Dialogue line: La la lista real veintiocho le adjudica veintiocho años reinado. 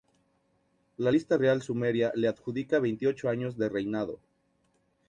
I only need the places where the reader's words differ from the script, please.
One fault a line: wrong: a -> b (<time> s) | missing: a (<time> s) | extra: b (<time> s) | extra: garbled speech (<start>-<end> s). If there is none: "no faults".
missing: la (1.1 s)
wrong: veintiocho -> sumeria (1.6 s)
extra: de (3.6 s)